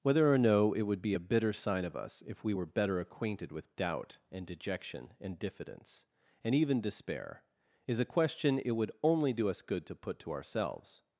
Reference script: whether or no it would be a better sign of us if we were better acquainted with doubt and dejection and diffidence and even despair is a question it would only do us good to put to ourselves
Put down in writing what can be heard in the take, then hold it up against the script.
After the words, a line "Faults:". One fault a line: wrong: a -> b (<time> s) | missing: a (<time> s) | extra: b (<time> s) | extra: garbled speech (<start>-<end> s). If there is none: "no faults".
whether or no it would be a bitter sign of us if we were better acquainted with doubt and dejection and diffidence and even despair is a question it would only do us good to put to ourselves
Faults:
wrong: better -> bitter (1.2 s)